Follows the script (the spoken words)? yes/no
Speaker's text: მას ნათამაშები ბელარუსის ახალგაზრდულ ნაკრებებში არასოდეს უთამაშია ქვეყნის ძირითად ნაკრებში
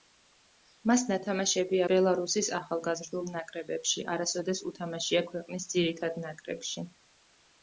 yes